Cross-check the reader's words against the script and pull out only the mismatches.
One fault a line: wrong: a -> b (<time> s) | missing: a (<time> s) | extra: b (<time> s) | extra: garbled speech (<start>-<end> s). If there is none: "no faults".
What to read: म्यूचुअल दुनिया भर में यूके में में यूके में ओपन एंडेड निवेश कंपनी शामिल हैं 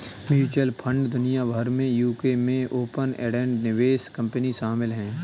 extra: फंड (0.8 s)
missing: में यूके में (2.6 s)